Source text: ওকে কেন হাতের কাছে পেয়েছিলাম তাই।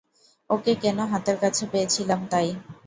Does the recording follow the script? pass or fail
pass